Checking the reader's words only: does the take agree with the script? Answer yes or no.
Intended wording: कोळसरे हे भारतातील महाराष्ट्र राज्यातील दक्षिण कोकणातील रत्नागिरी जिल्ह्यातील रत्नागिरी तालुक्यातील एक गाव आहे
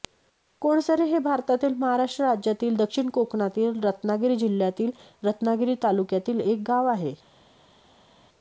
yes